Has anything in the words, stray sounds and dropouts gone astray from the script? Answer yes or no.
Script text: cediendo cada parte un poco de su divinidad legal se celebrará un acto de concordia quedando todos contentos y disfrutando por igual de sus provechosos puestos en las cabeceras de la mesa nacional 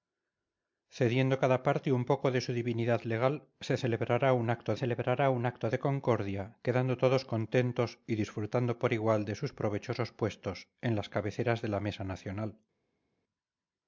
yes